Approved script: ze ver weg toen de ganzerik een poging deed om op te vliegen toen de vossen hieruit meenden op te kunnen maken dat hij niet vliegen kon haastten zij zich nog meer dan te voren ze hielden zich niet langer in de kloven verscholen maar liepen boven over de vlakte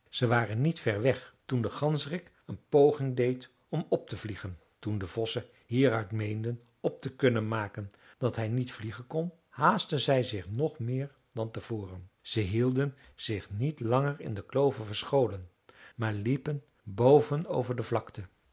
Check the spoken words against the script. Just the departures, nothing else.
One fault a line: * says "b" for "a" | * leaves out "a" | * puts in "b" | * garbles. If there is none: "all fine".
* puts in "waren niet"